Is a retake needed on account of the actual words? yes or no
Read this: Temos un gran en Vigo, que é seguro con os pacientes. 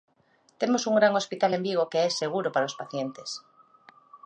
yes